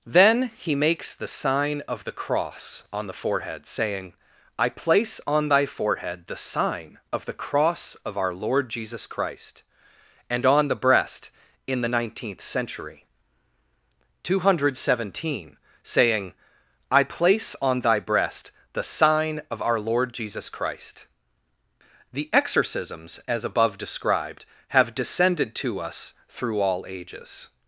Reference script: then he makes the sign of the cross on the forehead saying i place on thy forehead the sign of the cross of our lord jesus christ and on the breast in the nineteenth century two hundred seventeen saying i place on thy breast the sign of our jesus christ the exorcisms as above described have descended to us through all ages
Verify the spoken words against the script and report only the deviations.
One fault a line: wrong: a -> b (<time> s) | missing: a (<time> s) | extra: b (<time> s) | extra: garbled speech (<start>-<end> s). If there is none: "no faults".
extra: lord (19.8 s)